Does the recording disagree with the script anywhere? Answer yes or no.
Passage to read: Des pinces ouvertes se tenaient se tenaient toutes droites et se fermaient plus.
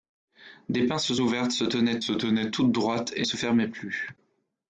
no